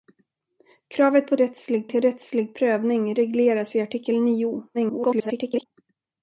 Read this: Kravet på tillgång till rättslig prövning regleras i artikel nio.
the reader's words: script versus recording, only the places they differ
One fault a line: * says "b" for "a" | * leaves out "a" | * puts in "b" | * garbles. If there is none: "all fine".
* says "rättslig" for "tillgång"
* garbles